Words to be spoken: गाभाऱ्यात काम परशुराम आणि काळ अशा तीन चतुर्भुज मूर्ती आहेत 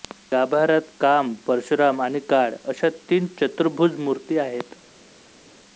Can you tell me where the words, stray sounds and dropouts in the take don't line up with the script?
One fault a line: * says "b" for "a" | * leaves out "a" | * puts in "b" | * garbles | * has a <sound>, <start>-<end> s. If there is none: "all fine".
all fine